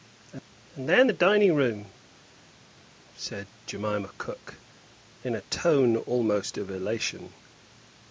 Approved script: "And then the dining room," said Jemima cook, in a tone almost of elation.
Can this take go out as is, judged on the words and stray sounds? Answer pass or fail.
pass